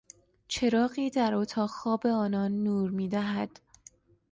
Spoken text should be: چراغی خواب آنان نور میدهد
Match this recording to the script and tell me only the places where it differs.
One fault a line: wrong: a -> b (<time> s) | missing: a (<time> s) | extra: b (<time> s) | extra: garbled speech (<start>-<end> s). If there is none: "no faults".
extra: در اتاق (1.1 s)